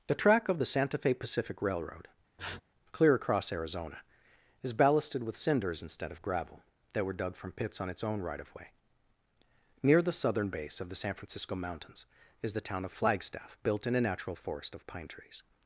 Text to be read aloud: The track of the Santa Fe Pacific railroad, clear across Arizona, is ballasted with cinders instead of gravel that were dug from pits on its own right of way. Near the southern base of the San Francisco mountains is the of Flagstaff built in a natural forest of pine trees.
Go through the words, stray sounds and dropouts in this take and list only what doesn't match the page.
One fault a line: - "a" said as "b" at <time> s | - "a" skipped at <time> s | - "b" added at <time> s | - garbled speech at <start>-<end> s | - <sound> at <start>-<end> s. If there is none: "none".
- sniff at 2.4-2.6 s
- "town" added at 12.6 s